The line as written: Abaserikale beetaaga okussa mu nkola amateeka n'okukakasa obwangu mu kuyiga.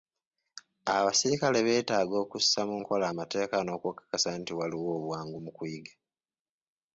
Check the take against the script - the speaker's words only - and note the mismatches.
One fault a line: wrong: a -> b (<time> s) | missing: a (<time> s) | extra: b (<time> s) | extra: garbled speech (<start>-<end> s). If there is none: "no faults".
extra: nti waliwo (4.4 s)